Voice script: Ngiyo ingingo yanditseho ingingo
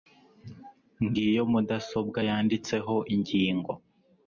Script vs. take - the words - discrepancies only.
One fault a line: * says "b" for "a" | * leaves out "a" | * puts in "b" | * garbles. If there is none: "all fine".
* says "mudasobwa" for "ingingo"